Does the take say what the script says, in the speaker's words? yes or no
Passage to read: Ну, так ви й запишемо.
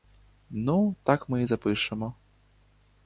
no